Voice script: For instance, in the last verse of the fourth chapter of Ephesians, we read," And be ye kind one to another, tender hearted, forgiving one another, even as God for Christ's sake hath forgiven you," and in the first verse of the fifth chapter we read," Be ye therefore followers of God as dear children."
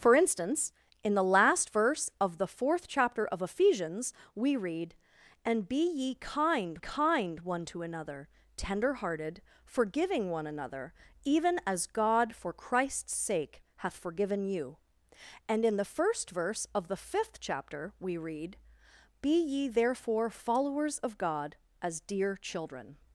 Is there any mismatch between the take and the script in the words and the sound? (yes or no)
yes